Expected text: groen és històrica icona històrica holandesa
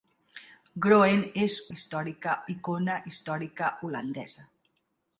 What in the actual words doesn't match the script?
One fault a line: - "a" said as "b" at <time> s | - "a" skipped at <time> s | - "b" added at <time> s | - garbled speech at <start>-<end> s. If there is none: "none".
none